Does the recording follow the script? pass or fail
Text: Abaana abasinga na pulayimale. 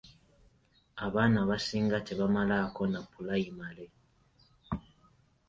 fail